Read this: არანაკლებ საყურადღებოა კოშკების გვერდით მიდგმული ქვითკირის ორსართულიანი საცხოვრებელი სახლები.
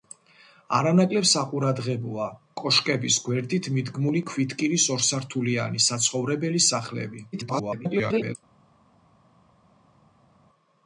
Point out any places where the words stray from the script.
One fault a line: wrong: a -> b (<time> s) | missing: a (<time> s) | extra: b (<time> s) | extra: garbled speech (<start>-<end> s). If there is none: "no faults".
extra: garbled speech (7.3-8.4 s)